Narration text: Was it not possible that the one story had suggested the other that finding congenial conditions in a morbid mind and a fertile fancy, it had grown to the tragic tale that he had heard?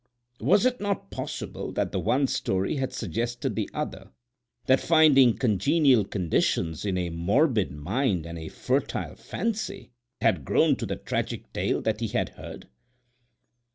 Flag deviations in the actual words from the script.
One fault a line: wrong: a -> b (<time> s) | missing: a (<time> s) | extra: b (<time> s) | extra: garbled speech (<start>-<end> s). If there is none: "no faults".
missing: it (9.9 s)